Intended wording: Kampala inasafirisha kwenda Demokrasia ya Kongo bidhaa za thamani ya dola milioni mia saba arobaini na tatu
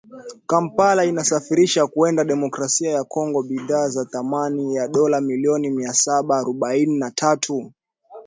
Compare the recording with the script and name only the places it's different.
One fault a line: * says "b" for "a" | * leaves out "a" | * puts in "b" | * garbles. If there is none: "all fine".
all fine